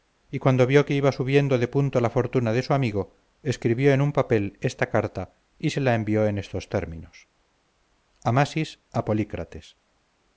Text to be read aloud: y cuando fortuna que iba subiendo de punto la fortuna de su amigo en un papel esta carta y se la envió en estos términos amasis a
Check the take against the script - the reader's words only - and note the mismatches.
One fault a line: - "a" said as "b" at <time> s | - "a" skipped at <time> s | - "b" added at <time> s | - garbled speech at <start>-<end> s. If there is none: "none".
- "fortuna" said as "vio" at 0.7 s
- "escribió" added at 3.4 s